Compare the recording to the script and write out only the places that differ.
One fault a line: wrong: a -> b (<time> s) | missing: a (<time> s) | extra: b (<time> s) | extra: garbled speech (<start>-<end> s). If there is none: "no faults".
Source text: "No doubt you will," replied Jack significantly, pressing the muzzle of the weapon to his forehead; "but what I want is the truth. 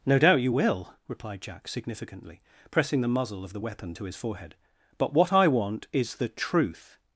no faults